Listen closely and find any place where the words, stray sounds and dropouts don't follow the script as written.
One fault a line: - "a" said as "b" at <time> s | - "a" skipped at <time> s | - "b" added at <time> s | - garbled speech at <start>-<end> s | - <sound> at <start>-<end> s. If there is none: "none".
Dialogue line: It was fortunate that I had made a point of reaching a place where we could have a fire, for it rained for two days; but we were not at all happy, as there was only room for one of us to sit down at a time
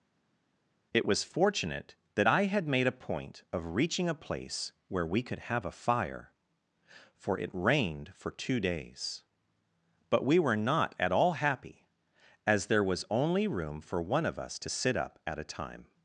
- "down" said as "up" at 15.0 s